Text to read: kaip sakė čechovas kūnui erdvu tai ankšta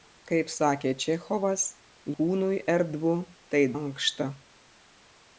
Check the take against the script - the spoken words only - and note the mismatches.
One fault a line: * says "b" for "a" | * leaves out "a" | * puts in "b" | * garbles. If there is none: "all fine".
all fine